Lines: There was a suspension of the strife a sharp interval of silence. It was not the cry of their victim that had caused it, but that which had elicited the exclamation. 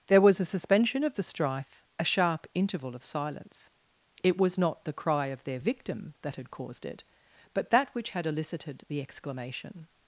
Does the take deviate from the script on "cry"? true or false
false